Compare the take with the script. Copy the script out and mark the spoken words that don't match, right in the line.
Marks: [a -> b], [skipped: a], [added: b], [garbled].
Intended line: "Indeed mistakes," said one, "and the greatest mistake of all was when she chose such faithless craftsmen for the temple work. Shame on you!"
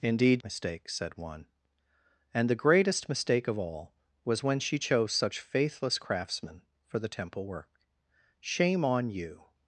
"Indeed mistakes," said one, "and the greatest mistake of all was when she chose such faithless craftsmen for the temple work. Shame on you!"